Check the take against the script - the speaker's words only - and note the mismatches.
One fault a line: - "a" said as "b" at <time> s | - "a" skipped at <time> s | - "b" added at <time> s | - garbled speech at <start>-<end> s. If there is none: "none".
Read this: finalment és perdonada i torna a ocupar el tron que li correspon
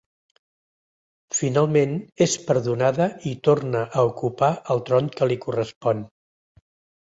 none